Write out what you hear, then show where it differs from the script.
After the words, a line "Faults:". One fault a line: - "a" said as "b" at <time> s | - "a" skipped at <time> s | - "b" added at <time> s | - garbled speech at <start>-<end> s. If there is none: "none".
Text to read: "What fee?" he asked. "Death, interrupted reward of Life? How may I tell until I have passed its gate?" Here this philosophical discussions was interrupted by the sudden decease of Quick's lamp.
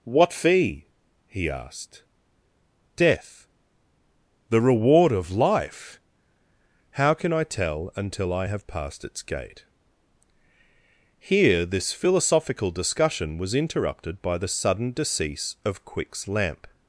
"What fee?" he asked. "Death, the reward of Life? How can I tell until I have passed its gate?" Here this philosophical discussion was interrupted by the sudden decease of Quick's lamp.
Faults:
- "interrupted" said as "the" at 4.5 s
- "may" said as "can" at 7.1 s
- "discussions" said as "discussion" at 12.7 s